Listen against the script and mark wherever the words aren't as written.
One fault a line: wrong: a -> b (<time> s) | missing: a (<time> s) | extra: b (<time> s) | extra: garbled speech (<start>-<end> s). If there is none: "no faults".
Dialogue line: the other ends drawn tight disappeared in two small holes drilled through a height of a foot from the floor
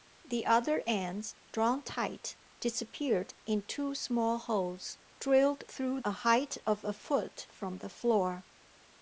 no faults